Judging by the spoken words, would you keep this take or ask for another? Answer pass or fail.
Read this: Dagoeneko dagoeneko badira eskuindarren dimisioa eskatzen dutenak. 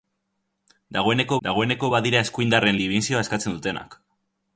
pass